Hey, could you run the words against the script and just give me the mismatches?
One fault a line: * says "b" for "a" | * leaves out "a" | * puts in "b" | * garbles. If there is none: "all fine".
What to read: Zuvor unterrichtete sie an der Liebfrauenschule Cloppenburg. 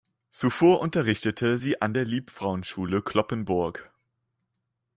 all fine